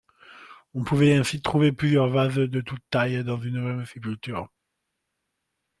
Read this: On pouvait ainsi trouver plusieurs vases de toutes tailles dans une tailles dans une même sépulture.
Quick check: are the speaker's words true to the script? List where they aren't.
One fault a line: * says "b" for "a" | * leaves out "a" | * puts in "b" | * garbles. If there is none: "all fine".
* leaves out "tailles dans une"